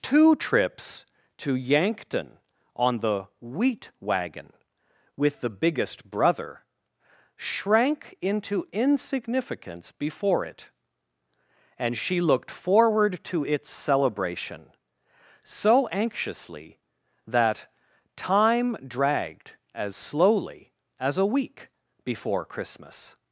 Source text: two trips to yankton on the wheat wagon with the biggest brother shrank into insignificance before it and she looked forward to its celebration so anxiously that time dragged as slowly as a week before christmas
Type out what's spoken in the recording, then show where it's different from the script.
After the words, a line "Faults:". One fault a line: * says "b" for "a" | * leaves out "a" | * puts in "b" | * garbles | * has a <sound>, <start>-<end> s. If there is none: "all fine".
two trips to yankton on the wheat wagon with the biggest brother shrank into insignificance before it and she looked forward to its celebration so anxiously that time dragged as slowly as a week before christmas
Faults:
all fine